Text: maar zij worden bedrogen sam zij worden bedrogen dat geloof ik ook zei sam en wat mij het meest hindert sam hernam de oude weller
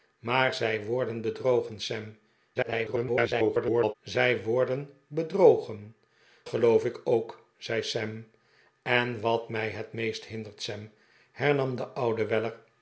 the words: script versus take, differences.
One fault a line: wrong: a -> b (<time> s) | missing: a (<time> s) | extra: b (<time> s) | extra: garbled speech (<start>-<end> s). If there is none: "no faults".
extra: garbled speech (2.6-3.9 s)
missing: dat (6.0 s)